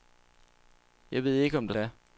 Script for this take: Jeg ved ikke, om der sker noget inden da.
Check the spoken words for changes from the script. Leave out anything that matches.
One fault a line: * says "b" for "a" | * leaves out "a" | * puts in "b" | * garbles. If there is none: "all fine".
* leaves out "sker noget inden"